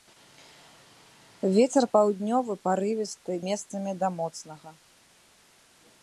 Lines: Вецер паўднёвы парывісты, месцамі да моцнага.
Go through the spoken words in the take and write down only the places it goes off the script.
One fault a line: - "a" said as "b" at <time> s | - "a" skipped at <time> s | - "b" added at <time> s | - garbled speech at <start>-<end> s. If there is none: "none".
none